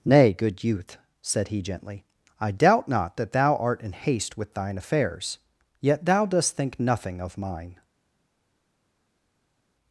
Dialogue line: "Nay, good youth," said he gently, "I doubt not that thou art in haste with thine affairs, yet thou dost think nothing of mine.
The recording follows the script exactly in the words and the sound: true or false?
true